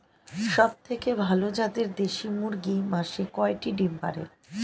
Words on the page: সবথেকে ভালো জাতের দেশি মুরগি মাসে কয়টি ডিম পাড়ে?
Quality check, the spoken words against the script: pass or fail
pass